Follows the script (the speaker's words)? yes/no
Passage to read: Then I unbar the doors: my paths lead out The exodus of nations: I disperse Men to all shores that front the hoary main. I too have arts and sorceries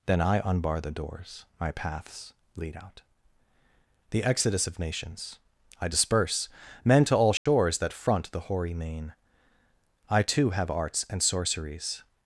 yes